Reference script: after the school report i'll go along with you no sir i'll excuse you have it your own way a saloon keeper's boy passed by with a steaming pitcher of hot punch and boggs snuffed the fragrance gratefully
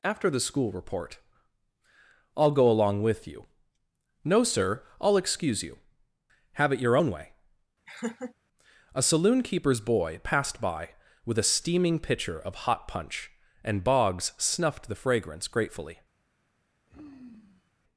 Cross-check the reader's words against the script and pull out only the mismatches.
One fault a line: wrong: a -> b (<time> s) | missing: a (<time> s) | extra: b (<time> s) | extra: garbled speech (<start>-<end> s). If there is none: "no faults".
no faults